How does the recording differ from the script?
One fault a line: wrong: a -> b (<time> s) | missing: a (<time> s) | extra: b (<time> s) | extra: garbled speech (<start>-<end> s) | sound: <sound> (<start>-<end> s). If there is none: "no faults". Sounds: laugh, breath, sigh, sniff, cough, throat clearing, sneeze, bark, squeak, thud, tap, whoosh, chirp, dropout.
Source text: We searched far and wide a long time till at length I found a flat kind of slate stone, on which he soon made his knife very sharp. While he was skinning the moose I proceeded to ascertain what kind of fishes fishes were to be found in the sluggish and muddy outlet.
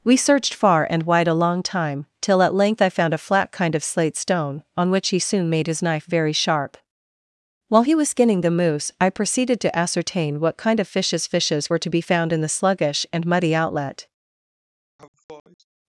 sound: sneeze (15.0-15.7 s)